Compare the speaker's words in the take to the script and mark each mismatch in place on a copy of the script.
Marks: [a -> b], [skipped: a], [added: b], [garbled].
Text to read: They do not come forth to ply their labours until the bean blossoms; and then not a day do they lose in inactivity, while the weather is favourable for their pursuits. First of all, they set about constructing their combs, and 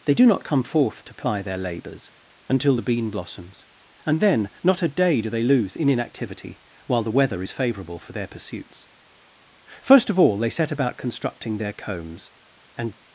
They do not come forth to ply their labours until the bean blossoms; and then not a day do they lose in inactivity, while the weather is favourable for their pursuits. First of all, they set about constructing their combs, and